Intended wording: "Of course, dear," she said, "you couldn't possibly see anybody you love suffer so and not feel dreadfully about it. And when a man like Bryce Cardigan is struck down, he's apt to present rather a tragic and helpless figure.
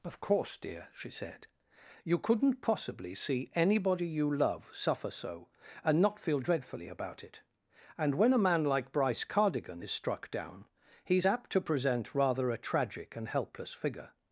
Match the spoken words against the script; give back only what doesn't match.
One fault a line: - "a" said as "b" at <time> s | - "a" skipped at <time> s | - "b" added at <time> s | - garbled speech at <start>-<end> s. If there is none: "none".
none